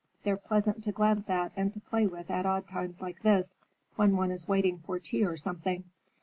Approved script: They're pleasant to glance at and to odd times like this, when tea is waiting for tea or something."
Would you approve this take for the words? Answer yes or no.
no